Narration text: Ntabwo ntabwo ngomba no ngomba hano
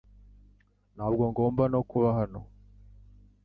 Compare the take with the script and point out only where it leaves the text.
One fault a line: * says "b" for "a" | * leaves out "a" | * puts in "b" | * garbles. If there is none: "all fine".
* leaves out "ntabwo"
* says "kuba" for "ngomba"